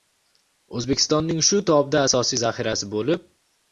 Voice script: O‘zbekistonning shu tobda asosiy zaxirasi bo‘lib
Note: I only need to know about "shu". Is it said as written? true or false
true